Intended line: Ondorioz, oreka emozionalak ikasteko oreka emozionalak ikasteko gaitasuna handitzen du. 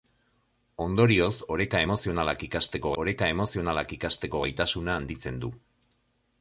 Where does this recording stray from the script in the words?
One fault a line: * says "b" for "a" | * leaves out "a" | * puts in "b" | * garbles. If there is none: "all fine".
all fine